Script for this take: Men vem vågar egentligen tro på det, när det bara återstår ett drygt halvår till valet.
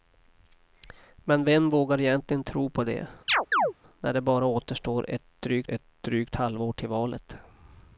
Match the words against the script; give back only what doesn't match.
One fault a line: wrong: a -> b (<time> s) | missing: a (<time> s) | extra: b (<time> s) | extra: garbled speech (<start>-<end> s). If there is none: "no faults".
extra: ett drygt (5.7 s)